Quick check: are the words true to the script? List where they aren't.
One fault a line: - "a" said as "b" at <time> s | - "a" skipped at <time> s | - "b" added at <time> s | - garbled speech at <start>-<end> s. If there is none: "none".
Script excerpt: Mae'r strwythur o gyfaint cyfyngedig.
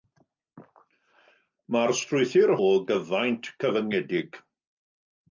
none